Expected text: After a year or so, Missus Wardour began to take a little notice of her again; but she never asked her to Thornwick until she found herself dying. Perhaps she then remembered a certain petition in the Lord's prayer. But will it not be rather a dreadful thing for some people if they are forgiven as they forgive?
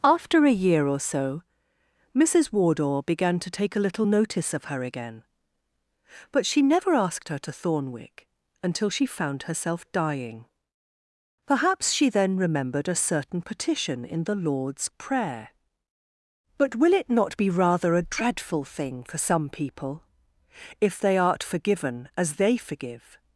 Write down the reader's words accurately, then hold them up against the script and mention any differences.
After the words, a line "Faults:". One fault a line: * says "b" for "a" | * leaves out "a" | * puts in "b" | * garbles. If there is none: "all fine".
After a year or so, Missus Wardour began to take a little notice of her again; but she never asked her to Thornwick until she found herself dying. Perhaps she then remembered a certain petition in the Lord's prayer. But will it not be rather a dreadful thing for some people if they art forgiven as they forgive?
Faults:
* says "art" for "are"